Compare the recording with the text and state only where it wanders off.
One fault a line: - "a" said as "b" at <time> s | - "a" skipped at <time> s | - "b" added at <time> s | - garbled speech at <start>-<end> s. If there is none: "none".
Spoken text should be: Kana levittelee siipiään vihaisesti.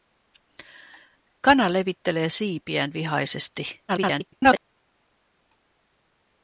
- garbled speech at 3.9-4.7 s